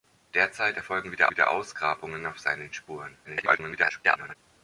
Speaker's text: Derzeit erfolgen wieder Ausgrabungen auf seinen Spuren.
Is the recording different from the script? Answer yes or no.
yes